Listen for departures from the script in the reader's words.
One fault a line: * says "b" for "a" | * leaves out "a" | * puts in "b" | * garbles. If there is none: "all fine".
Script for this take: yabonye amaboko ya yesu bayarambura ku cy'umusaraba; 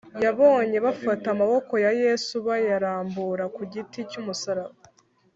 * puts in "bafata"
* puts in "giti"